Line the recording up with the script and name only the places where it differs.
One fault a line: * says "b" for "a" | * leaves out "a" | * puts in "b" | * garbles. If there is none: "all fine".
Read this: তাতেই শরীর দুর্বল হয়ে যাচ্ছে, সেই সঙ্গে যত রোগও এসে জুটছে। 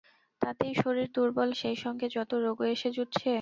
* leaves out "হয়ে যাচ্ছে"